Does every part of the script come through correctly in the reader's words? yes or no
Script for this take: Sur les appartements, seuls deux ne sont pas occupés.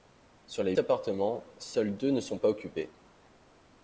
yes